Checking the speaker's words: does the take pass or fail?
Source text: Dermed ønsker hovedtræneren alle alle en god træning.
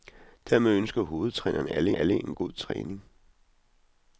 pass